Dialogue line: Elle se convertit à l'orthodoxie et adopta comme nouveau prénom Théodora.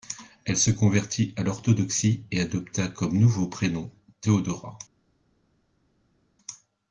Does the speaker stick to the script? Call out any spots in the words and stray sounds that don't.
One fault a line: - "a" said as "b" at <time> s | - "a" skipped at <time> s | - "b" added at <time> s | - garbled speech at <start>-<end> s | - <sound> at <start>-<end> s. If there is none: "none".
none